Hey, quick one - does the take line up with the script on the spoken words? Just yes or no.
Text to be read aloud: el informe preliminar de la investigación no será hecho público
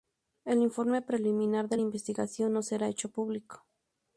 yes